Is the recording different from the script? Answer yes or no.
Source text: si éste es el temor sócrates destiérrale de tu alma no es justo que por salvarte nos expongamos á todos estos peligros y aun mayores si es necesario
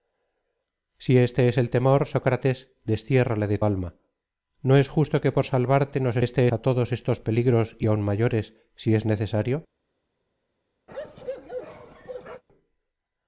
yes